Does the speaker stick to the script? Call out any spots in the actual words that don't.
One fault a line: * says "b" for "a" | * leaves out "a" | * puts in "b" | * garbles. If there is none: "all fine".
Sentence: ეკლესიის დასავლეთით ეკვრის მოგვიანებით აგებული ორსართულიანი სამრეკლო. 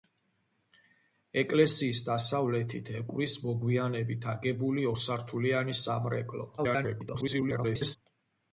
* garbles